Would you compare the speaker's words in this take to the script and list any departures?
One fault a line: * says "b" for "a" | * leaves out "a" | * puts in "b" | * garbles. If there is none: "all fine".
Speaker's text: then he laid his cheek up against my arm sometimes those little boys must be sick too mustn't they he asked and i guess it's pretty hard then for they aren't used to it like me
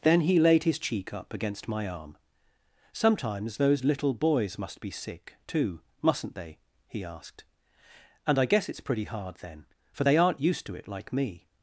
all fine